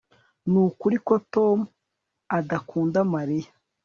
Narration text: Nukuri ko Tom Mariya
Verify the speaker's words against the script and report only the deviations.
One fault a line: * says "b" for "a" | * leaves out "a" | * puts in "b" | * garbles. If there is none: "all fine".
* puts in "adakunda"